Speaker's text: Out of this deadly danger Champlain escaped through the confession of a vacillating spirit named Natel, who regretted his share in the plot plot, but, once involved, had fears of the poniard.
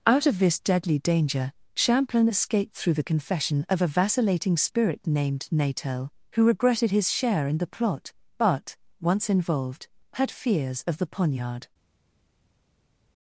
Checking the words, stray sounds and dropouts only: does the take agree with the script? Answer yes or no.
no